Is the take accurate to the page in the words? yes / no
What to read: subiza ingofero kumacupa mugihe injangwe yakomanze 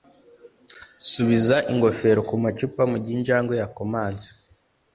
yes